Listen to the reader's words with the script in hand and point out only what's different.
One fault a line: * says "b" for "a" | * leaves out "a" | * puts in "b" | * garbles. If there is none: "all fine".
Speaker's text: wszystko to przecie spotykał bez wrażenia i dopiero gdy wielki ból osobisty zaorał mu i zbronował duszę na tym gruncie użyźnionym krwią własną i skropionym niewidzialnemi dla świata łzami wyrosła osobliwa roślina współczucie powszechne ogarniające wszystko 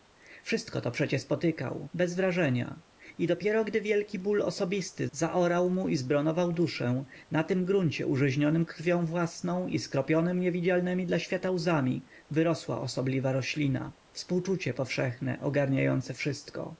all fine